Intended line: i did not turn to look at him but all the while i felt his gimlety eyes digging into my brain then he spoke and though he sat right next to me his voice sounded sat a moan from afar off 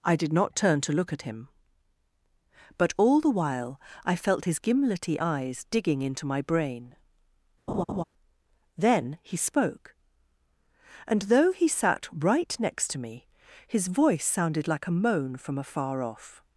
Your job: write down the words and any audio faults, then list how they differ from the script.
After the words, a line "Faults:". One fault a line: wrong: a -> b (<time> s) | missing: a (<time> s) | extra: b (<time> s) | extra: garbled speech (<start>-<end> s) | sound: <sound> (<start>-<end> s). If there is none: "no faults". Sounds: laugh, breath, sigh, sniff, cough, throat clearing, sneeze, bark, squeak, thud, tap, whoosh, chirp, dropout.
i did not turn to look at him but all the while i felt his gimlety eyes digging into my brain then he spoke and though he sat right next to me his voice sounded like a moan from afar off
Faults:
sound: laugh (7.7-8.0 s)
wrong: sat -> like (14.7 s)